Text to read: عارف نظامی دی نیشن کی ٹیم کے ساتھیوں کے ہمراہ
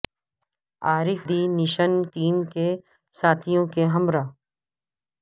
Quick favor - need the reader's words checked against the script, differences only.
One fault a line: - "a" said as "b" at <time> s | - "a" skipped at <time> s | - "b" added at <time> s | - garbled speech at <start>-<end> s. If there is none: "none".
- "نظامی" skipped at 1.2 s
- "کی" skipped at 1.9 s